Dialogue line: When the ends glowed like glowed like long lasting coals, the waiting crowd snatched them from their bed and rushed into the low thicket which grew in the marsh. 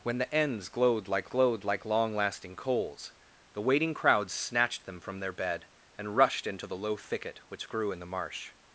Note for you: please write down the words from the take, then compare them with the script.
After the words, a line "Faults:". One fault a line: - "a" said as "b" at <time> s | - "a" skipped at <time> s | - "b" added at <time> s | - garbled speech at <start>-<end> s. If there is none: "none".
When the ends glowed like glowed like long lasting coals, the waiting crowd snatched them from their bed and rushed into the low thicket which grew in the marsh.
Faults:
none